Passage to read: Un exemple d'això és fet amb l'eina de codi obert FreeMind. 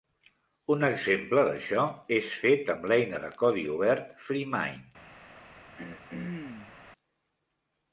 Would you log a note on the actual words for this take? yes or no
no